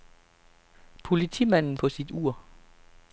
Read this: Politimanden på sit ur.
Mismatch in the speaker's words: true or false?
false